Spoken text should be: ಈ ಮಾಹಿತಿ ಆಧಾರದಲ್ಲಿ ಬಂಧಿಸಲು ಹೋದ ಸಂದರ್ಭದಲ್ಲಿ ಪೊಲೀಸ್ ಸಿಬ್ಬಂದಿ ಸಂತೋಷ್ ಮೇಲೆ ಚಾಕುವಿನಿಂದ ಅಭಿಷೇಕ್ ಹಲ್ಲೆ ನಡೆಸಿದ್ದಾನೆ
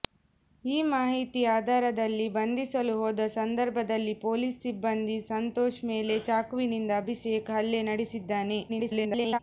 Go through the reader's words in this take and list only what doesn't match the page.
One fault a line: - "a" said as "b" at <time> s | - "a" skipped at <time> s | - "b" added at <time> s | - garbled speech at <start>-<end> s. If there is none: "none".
- garbled speech at 8.7-9.4 s